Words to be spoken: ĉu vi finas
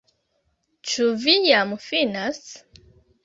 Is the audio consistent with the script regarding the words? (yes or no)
no